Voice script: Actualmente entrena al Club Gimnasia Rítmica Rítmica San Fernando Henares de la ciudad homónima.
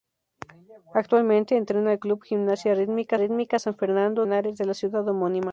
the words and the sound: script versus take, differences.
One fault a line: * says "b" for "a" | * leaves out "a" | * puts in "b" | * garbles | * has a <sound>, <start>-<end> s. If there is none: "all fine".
all fine